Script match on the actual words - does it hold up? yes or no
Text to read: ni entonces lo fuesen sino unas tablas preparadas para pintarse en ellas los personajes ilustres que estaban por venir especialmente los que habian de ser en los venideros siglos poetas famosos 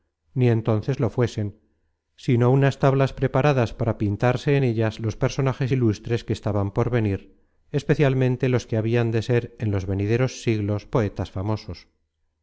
yes